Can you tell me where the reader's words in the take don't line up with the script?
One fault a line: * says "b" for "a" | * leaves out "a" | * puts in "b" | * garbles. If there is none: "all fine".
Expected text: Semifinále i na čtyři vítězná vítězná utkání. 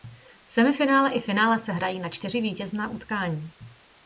* puts in "finále se hrají"
* leaves out "vítězná"